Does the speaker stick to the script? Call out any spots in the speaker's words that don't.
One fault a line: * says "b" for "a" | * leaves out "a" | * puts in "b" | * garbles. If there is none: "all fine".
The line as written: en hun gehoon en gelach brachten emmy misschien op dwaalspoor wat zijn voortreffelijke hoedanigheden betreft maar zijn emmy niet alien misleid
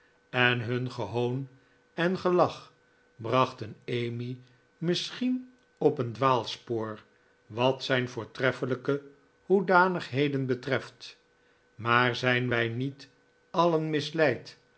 * puts in "een"
* says "wij" for "emmy"